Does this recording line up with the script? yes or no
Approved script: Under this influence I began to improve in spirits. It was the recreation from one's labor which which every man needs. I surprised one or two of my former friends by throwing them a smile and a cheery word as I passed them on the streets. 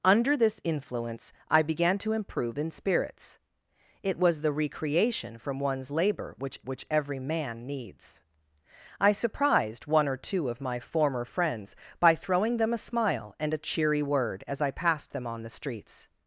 yes